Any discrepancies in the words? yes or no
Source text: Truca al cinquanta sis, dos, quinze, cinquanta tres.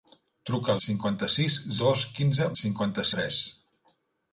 no